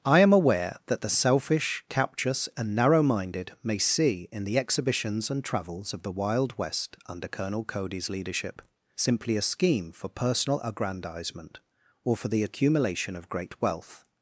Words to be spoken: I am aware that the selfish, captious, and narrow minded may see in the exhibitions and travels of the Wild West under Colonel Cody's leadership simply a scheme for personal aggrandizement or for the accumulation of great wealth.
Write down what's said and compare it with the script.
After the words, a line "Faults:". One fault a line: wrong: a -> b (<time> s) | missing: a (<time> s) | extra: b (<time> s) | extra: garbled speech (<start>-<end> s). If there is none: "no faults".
I am aware that the selfish, captious, and narrow minded may see in the exhibitions and travels of the Wild West under Colonel Cody's leadership simply a scheme for personal aggrandizement or for the accumulation of great wealth.
Faults:
no faults